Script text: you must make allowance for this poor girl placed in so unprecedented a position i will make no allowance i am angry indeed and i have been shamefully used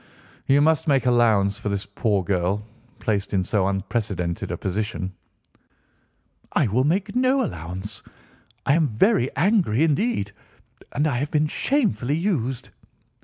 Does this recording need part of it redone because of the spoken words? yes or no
yes